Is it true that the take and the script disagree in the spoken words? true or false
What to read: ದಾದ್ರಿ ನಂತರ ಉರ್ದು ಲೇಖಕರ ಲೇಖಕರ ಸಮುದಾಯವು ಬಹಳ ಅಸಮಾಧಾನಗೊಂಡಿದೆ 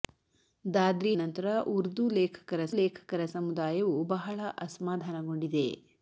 false